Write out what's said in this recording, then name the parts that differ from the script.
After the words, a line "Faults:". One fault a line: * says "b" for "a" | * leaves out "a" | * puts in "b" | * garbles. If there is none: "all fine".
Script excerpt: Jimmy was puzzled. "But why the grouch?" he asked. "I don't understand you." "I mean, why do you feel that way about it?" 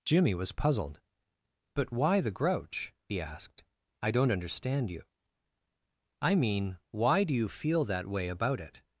Jimmy was puzzled. "But why the grouch?" he asked. "I don't understand you." "I mean, why do you feel that way about it?"
Faults:
all fine